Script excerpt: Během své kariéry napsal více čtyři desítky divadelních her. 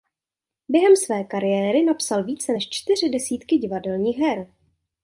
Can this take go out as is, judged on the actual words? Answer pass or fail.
fail